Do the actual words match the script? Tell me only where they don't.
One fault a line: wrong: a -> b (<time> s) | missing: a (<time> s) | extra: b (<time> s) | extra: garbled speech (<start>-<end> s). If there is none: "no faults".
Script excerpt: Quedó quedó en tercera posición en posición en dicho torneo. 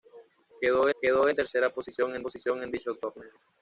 no faults